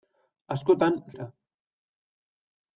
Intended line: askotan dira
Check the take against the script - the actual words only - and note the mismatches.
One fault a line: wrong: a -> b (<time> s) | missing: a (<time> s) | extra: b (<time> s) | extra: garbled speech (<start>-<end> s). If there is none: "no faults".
no faults